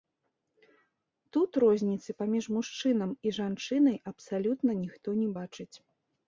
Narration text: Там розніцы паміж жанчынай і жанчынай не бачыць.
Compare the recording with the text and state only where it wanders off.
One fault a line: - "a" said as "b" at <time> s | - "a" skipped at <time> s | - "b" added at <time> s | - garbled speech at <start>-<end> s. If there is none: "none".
- "Там" said as "Тут" at 1.4 s
- "жанчынай" said as "мужчынам" at 2.6 s
- "абсалютна ніхто" added at 4.1 s